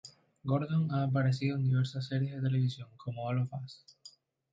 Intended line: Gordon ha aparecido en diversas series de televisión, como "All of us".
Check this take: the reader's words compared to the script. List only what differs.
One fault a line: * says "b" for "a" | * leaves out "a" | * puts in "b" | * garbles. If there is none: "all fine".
all fine